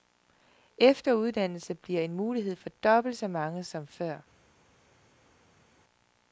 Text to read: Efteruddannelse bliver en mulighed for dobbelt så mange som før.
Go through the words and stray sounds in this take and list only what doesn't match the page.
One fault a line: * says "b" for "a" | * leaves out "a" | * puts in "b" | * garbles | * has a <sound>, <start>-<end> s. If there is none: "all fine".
all fine